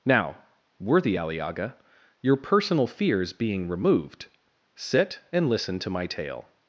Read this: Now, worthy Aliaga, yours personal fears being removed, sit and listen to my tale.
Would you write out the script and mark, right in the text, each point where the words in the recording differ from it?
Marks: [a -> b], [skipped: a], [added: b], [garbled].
Now, worthy Aliaga, [yours -> your] personal fears being removed, sit and listen to my tale.